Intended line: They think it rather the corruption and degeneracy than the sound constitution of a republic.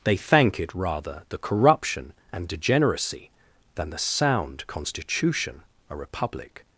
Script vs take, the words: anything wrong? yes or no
yes